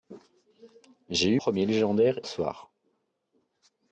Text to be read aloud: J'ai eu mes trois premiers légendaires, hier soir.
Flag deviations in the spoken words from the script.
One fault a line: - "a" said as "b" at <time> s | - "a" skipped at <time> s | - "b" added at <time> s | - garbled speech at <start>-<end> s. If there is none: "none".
- "mes trois" skipped at 1.4 s
- "hier" skipped at 2.2 s